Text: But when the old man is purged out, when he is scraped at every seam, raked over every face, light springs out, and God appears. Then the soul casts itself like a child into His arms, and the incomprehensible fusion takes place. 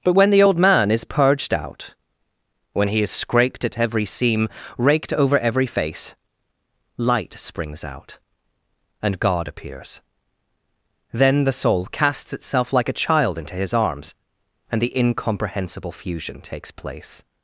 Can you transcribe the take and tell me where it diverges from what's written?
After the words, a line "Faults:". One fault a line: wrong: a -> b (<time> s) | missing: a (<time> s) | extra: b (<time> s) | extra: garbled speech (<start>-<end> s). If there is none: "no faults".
But when the old man is purged out, when he is scraped at every seam, raked over every face, light springs out, and God appears. Then the soul casts itself like a child into His arms, and the incomprehensible fusion takes place.
Faults:
no faults